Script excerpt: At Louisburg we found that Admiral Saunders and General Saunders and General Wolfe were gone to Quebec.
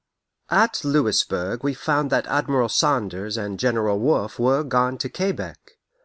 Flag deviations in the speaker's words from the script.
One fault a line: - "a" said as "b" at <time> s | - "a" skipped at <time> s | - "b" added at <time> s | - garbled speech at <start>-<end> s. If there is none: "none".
- "Saunders and General" skipped at 4.0 s